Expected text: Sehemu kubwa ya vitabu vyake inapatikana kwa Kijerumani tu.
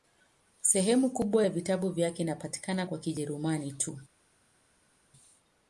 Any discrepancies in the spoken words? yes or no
no